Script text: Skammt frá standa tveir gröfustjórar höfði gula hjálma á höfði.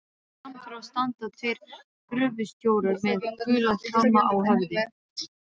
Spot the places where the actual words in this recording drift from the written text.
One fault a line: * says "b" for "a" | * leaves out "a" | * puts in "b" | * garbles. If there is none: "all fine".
* says "með" for "höfði"